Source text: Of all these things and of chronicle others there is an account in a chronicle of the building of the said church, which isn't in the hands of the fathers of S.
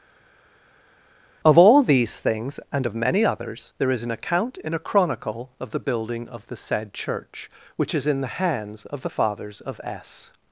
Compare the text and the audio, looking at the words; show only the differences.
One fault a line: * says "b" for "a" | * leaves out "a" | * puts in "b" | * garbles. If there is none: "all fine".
* says "many" for "chronicle"
* says "is" for "isn't"